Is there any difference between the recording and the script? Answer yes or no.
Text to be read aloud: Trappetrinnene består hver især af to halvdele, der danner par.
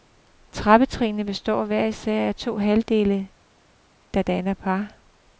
no